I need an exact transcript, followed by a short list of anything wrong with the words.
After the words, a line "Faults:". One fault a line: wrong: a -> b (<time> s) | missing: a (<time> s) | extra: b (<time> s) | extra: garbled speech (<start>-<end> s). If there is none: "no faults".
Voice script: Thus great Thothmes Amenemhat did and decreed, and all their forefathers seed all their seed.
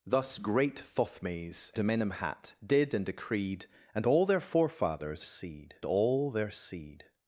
Thus great Thothmes Amenemhat did and decreed, and all their forefathers seed all their seed.
Faults:
no faults